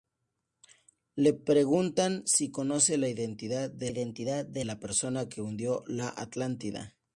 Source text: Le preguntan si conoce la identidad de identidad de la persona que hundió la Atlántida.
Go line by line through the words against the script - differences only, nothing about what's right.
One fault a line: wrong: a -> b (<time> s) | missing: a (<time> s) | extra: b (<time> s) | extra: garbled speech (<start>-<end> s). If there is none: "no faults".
no faults